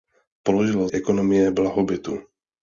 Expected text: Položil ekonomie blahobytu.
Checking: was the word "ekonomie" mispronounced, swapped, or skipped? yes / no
no